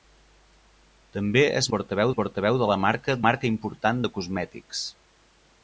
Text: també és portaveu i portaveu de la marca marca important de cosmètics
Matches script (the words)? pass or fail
pass